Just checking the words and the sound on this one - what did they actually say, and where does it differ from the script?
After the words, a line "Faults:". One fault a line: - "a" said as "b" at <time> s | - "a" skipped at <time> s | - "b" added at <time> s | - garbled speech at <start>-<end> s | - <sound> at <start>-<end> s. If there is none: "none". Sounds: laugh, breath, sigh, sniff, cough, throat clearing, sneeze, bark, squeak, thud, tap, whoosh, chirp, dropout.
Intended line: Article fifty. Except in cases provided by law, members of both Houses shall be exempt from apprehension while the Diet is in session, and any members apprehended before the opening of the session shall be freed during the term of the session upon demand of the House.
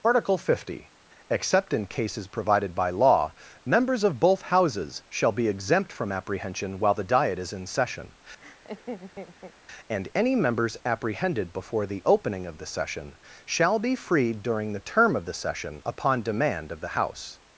Article fifty. Except in cases provided by law, members of both Houses shall be exempt from apprehension while the Diet is in session, and any members apprehended before the opening of the session shall be freed during the term of the session upon demand of the House.
Faults:
- laugh at 8.4-9.5 s